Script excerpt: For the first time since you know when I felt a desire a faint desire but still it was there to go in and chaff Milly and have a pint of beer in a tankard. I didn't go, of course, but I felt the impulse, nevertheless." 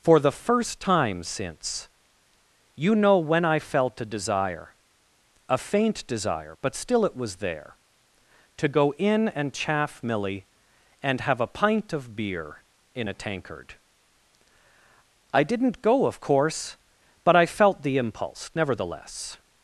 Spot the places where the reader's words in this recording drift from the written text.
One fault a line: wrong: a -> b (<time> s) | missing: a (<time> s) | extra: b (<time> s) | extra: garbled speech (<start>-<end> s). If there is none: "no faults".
no faults